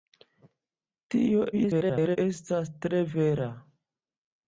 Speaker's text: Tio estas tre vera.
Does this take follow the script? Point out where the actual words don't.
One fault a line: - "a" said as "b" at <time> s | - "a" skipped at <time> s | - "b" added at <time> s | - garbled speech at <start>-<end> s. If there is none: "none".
- garbled speech at 1.5-2.2 s